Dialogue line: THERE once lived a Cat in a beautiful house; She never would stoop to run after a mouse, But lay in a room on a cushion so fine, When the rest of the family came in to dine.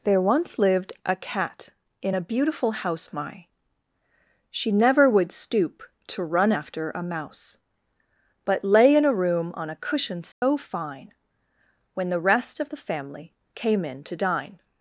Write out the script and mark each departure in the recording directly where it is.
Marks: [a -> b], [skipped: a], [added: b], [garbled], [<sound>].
THERE once lived a Cat in a beautiful house; [added: my] She never would stoop to run after a mouse, But lay in a room on a cushion so [dropout] fine, When the rest of the family came in to dine.